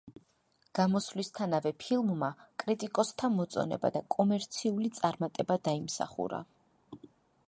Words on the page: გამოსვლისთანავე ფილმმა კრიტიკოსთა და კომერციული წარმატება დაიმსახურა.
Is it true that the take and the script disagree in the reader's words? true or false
true